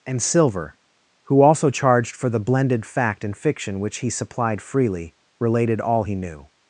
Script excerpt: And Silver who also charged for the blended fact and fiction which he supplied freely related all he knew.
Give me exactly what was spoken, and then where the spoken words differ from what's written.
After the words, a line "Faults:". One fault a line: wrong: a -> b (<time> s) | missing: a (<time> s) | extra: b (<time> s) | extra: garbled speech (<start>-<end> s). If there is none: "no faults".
And Silver who also charged for the blended fact and fiction which he supplied freely related all he knew.
Faults:
no faults